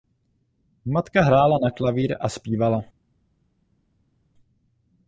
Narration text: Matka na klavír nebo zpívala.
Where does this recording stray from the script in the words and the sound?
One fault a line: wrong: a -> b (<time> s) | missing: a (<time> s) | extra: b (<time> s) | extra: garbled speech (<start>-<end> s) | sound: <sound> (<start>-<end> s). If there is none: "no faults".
extra: hrála (1.2 s)
wrong: nebo -> a (2.2 s)